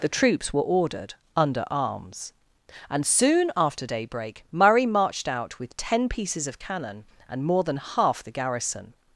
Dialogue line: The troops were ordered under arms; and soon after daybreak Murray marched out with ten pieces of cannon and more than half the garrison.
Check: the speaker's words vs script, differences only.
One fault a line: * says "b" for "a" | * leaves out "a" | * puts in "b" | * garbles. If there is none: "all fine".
all fine